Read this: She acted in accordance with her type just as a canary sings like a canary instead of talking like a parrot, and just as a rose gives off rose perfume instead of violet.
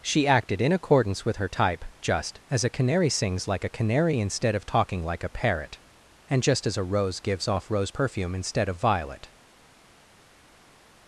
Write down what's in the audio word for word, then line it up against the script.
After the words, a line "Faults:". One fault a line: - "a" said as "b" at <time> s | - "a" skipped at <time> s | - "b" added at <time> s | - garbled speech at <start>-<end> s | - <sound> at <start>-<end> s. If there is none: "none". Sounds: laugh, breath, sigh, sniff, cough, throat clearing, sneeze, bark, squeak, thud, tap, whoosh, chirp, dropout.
She acted in accordance with her type just as a canary sings like a canary instead of talking like a parrot, and just as a rose gives off rose perfume instead of violet.
Faults:
none